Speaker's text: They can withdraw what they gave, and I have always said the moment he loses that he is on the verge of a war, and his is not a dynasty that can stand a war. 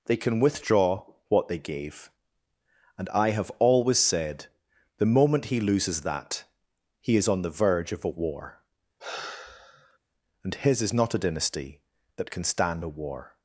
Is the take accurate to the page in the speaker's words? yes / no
yes